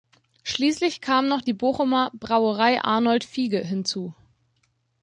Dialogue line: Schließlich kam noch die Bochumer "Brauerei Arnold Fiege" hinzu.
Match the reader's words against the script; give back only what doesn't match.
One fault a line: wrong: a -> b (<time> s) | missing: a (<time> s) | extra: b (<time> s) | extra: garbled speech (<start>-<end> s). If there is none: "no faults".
no faults